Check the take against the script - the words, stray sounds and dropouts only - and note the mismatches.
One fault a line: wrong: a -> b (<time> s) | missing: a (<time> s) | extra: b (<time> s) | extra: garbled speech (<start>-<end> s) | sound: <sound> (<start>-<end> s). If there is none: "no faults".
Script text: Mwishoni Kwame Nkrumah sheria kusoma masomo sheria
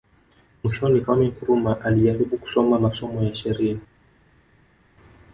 wrong: sheria -> alijaribu (1.8 s)
extra: ya (3.2 s)